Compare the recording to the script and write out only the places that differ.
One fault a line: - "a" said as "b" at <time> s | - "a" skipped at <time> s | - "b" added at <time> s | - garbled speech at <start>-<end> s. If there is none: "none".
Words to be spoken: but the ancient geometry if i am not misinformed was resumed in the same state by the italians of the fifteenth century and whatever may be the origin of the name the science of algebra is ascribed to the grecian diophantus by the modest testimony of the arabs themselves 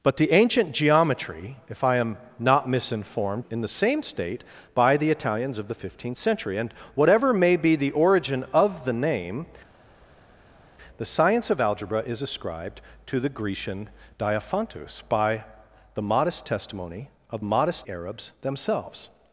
- "was resumed" skipped at 3.5 s
- "the" said as "modest" at 17.4 s